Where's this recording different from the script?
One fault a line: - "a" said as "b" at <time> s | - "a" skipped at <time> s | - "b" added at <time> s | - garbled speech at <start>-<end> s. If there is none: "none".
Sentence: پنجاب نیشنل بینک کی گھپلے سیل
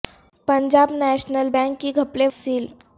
none